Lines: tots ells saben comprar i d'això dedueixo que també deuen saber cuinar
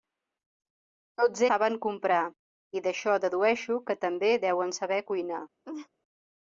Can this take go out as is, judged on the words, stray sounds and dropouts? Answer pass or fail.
fail